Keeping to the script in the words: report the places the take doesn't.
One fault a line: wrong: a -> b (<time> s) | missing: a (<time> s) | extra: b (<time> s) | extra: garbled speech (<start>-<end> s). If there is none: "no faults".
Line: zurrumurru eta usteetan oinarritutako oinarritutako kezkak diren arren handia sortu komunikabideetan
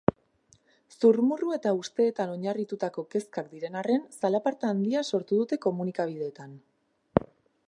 missing: oinarritutako (3.0 s)
extra: zalaparta (4.2 s)
extra: dute (5.5 s)